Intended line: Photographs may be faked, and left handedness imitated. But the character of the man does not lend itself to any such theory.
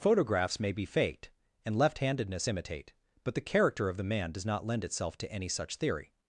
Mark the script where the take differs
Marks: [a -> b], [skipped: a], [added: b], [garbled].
Photographs may be faked, and left handedness [imitated. -> imitate] But the character of the man does not lend itself to any such theory.